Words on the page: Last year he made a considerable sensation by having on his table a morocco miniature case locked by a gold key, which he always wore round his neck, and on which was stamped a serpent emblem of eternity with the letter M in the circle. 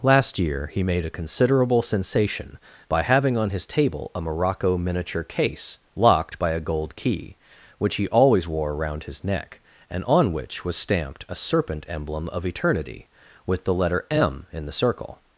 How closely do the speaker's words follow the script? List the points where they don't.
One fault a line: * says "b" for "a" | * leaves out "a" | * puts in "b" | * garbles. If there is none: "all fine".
* says "around" for "round"